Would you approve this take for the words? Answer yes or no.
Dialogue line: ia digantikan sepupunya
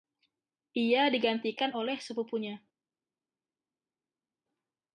no